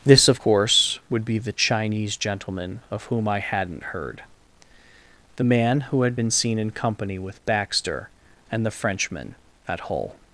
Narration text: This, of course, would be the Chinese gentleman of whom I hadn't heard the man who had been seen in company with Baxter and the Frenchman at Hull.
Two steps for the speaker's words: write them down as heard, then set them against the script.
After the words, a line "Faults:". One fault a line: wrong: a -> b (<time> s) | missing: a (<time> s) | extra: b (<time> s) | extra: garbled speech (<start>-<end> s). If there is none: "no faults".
This, of course, would be the Chinese gentleman of whom I hadn't heard the man who had been seen in company with Baxter and the Frenchman at Hull.
Faults:
no faults